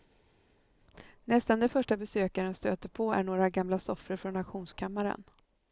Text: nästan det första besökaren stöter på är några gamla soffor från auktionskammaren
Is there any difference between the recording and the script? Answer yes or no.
no